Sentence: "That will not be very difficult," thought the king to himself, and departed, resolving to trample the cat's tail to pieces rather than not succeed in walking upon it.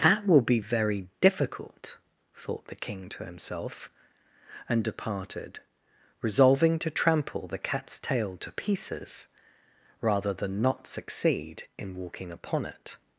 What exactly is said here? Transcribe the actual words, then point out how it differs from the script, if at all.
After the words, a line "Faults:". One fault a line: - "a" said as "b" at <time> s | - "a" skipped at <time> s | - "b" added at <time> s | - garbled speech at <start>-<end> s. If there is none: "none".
"That will be very difficult," thought the king to himself, and departed, resolving to trample the cat's tail to pieces rather than not succeed in walking upon it.
Faults:
- "not" skipped at 0.4 s